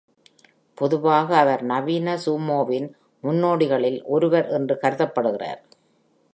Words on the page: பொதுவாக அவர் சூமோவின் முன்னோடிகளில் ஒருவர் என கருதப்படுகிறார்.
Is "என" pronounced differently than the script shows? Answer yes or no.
yes